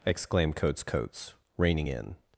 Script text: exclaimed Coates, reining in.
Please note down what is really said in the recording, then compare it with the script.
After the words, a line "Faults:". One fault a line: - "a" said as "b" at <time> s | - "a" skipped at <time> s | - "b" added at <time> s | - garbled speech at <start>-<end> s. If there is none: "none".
exclaimed Coates Coates, reining in.
Faults:
- "Coates" added at 0.8 s